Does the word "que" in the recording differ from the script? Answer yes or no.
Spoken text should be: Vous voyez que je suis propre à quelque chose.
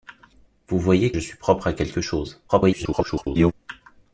yes